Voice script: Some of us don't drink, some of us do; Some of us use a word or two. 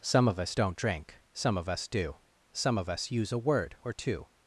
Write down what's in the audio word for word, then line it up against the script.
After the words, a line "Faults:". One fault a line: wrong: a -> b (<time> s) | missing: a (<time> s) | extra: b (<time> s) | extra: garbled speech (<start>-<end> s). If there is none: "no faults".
Some of us don't drink, some of us do; Some of us use a word or two.
Faults:
no faults